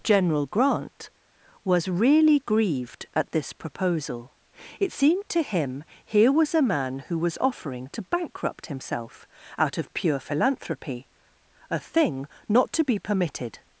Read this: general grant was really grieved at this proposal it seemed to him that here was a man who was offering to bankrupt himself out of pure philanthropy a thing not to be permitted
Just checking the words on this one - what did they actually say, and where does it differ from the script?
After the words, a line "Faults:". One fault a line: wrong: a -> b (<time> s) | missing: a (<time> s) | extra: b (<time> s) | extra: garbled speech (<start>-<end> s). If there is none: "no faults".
general grant was really grieved at this proposal it seemed to him here was a man who was offering to bankrupt himself out of pure philanthropy a thing not to be permitted
Faults:
missing: that (5.8 s)